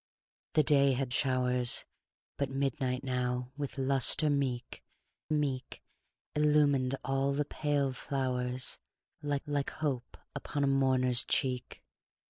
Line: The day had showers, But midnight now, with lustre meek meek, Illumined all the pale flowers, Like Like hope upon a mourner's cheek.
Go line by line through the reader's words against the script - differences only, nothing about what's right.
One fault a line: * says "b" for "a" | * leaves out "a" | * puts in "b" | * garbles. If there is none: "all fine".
all fine